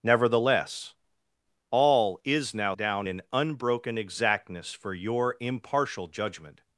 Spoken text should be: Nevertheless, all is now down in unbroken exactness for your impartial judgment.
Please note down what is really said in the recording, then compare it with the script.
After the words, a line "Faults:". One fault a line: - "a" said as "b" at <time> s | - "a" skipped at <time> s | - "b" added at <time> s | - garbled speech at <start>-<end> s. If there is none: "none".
Nevertheless, all is now down in unbroken exactness for your impartial judgment.
Faults:
none